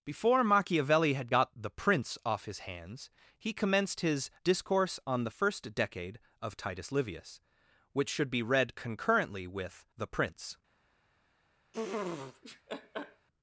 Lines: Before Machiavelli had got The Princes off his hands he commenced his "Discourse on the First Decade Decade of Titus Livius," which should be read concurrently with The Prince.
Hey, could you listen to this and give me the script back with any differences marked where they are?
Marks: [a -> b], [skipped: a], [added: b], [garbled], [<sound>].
Before Machiavelli had got The [Princes -> Prince] off his hands he commenced his "Discourse on the First Decade [skipped: Decade] of Titus Livius," which should be read concurrently with The Prince. [laugh]